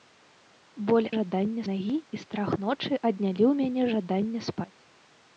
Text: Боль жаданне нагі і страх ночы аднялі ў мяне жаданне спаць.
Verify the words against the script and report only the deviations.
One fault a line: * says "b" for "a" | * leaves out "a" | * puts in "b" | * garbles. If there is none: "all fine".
all fine